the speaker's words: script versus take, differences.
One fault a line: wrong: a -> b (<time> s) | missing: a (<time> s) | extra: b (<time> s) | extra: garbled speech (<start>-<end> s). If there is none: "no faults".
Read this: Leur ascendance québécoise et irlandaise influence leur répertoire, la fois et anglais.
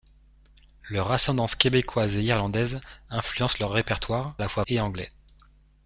no faults